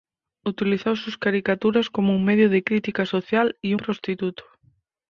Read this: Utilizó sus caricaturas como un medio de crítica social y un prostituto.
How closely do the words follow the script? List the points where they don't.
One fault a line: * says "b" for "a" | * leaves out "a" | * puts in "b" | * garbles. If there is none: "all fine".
* leaves out "un"